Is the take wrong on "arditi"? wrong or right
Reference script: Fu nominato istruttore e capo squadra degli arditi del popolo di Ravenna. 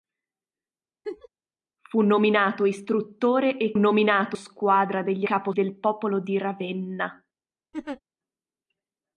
wrong